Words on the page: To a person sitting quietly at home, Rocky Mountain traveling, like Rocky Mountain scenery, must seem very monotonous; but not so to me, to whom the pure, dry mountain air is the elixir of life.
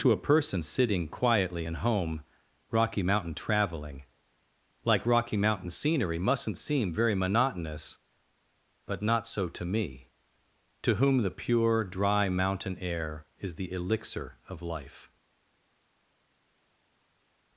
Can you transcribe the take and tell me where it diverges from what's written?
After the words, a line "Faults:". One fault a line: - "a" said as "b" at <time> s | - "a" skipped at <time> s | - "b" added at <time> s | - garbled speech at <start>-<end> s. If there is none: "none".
To a person sitting quietly in home, Rocky Mountain traveling, like Rocky Mountain scenery, mustn't seem very monotonous; but not so to me, to whom the pure, dry mountain air is the elixir of life.
Faults:
- "at" said as "in" at 1.6 s
- "must" said as "mustn't" at 6.2 s